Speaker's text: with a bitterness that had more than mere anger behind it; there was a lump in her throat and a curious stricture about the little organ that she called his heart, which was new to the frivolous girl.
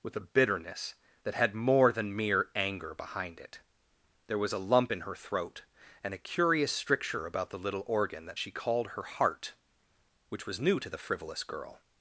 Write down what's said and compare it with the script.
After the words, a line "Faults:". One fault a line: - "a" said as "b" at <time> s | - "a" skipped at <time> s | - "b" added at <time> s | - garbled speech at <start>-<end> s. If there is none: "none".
with a bitterness that had more than mere anger behind it; there was a lump in her throat and a curious stricture about the little organ that she called her heart, which was new to the frivolous girl.
Faults:
- "his" said as "her" at 8.9 s